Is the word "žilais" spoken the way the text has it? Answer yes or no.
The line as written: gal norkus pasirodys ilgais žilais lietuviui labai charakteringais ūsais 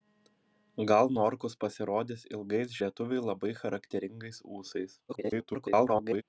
no